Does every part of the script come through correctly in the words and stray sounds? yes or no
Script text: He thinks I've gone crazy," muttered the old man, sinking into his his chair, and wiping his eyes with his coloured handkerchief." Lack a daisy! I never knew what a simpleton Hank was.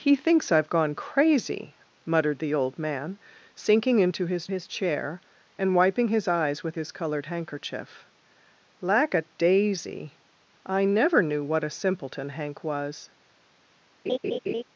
no